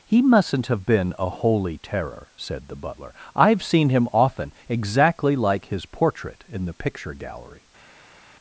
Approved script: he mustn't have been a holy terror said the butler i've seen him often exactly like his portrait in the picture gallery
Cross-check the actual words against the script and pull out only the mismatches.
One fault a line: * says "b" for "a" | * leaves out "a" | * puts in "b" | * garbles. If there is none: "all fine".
all fine